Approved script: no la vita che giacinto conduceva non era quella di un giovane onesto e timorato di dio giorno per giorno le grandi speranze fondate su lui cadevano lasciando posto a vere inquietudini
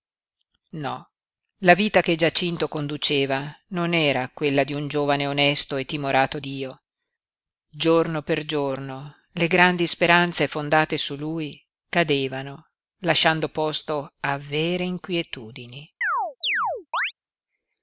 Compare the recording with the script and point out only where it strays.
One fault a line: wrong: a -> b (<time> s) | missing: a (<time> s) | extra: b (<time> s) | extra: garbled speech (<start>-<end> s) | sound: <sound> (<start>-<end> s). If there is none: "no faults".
missing: di (6.4 s)
sound: chirp (16.0-17.1 s)